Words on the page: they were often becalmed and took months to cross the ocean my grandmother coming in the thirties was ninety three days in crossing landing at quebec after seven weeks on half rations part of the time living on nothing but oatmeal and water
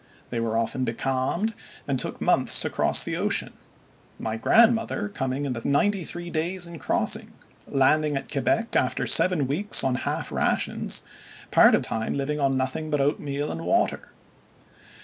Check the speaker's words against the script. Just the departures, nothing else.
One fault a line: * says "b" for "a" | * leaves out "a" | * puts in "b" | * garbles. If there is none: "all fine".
* leaves out "thirties was"
* leaves out "the"